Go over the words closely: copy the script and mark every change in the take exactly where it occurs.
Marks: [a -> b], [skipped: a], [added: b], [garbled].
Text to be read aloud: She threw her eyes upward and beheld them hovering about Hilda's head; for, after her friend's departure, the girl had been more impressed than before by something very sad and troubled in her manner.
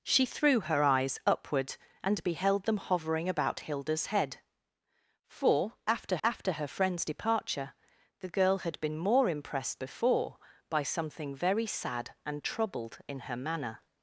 She threw her eyes upward and beheld them hovering about Hilda's head; for, after [added: after] her friend's departure, the girl had been more impressed [skipped: than] before by something very sad and troubled in her manner.